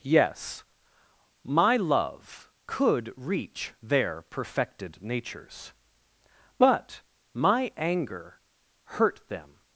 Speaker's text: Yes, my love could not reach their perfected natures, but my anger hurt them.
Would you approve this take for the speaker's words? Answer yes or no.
no